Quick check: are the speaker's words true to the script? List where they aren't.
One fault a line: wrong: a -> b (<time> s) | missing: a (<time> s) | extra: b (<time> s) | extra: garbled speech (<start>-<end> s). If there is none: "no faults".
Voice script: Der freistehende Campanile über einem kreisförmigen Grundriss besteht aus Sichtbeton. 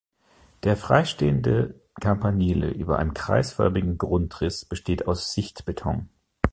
no faults